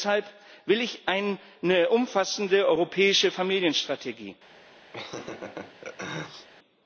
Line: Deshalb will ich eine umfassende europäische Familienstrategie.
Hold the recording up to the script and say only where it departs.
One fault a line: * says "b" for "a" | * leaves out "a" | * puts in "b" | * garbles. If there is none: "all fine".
all fine